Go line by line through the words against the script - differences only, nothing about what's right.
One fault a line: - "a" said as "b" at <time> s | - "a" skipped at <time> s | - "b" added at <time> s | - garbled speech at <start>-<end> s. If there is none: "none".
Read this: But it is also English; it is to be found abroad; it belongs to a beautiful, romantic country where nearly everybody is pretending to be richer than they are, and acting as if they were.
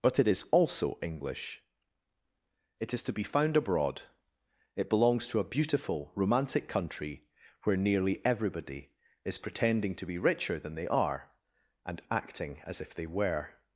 none